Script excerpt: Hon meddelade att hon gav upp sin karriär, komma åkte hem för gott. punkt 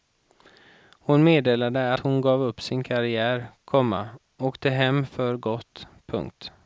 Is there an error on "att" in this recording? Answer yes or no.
yes